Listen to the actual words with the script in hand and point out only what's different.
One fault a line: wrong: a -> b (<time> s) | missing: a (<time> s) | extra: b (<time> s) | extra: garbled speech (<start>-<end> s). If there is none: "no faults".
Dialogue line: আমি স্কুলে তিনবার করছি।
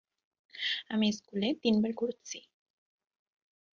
no faults